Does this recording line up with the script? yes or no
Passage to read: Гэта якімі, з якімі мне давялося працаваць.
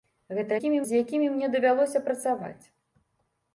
yes